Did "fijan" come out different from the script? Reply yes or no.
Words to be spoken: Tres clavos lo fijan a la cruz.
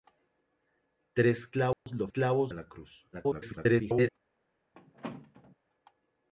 yes